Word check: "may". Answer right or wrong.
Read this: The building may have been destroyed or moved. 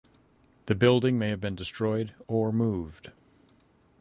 right